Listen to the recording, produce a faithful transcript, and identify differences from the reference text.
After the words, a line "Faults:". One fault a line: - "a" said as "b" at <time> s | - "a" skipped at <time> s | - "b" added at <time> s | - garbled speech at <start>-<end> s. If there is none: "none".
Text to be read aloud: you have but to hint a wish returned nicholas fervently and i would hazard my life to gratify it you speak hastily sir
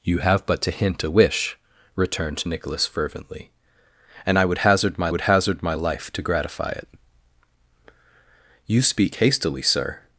you have but to hint a wish returned nicholas fervently and i would hazard my would hazard my life to gratify it you speak hastily sir
Faults:
- "would hazard my" added at 5.1 s